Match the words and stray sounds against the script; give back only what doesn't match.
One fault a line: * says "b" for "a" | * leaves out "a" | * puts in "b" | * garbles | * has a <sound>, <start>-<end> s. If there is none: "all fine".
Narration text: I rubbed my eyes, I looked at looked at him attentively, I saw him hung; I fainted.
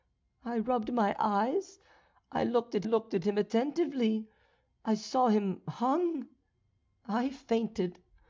all fine